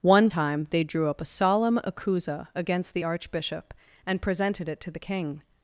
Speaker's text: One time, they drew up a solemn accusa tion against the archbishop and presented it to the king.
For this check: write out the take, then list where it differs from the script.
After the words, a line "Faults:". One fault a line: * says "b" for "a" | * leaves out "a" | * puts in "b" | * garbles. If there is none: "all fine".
One time, they drew up a solemn accusa against the archbishop and presented it to the king.
Faults:
* leaves out "tion"